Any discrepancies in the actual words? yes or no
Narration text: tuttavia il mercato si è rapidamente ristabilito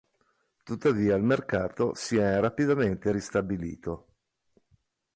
no